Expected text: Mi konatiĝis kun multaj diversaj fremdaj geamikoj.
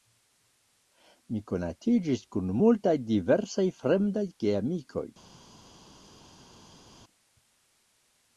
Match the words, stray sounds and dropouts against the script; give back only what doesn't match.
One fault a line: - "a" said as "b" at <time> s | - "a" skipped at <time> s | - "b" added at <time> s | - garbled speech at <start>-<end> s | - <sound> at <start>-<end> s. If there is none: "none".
none